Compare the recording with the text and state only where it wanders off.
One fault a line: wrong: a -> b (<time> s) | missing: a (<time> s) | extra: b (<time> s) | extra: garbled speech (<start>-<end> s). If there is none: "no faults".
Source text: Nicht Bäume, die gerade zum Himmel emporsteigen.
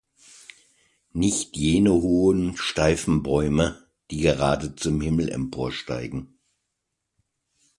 extra: jene hohen steifen (1.6 s)